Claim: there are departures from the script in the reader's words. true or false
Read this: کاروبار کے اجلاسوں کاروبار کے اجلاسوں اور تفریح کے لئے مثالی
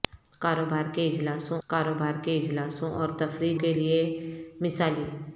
false